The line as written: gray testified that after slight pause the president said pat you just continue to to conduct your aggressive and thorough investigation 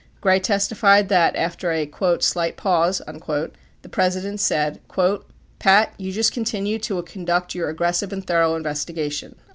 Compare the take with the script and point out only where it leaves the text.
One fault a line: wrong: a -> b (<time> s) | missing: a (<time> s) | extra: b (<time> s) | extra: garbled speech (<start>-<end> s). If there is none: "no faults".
extra: a (1.7 s)
missing: to (7.0 s)